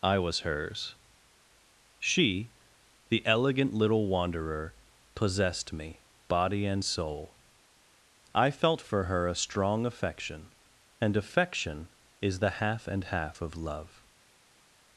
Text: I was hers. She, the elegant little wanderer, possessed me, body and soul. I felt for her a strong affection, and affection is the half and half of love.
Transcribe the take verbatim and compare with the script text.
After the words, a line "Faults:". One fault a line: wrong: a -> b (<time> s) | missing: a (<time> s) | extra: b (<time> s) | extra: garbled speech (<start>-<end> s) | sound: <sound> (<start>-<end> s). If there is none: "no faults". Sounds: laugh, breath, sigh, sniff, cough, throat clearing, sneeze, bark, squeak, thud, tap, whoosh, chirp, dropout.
I was hers. She, the elegant little wanderer, possessed me, body and soul. I felt for her a strong affection, and affection is the half and half of love.
Faults:
no faults